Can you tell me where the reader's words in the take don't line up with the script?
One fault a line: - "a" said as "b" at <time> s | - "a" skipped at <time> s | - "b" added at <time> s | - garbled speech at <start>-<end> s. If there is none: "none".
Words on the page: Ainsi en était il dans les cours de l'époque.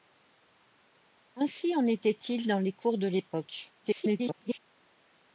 - garbled speech at 3.8-4.6 s